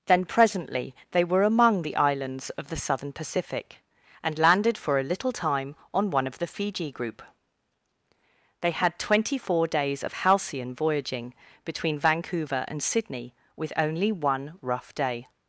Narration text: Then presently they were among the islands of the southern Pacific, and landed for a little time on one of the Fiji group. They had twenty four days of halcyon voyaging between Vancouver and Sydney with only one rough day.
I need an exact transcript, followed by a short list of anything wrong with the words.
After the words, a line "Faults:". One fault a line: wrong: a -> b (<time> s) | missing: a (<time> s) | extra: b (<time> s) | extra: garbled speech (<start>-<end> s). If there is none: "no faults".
Then presently they were among the islands of the southern Pacific, and landed for a little time on one of the Fiji group. They had twenty four days of halcyon voyaging between Vancouver and Sydney with only one rough day.
Faults:
no faults